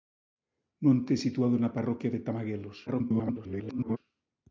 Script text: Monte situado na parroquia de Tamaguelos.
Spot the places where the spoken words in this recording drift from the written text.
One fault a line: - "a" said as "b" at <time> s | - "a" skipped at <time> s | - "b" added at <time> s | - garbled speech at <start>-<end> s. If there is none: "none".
- garbled speech at 2.9-4.0 s